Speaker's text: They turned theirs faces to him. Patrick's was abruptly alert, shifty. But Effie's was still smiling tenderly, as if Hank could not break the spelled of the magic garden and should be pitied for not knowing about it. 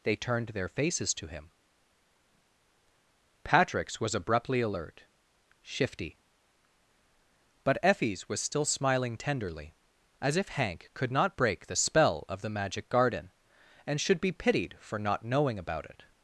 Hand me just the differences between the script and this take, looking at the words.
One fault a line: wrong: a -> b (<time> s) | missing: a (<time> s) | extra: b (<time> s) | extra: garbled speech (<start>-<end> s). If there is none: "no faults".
wrong: theirs -> their (0.5 s)
wrong: spelled -> spell (11.8 s)